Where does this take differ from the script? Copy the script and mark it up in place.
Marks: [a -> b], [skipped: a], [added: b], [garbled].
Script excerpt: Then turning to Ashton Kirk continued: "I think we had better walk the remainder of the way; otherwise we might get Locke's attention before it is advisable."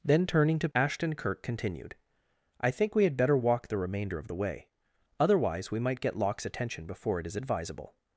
Then turning to Ashton Kirk continued: "I think we had better walk the remainder of the way; otherwise we might get Locke's attention before it is advisable."